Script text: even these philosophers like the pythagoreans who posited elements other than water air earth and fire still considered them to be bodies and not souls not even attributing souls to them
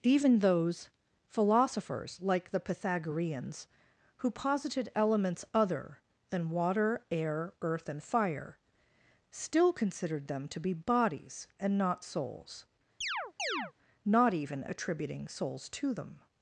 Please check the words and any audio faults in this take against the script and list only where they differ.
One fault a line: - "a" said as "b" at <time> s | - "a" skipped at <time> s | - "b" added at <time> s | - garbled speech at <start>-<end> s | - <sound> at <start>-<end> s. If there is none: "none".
- "these" said as "those" at 0.4 s
- chirp at 13.0-13.7 s